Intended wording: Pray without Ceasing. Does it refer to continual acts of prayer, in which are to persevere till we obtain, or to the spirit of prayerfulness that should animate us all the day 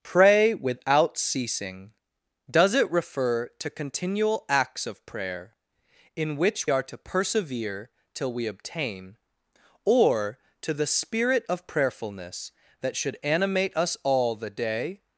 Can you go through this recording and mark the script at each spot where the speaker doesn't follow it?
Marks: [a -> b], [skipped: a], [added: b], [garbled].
Pray without Ceasing. Does it refer to continual acts of prayer, in which are to persevere till we obtain, or to the spirit of prayerfulness that should animate us all the day